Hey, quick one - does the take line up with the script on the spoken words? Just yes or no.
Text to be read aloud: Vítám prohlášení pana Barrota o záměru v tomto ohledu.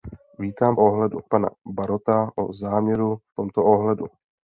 no